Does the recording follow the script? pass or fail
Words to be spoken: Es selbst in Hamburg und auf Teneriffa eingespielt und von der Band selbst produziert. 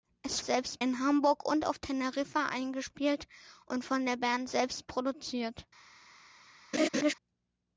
pass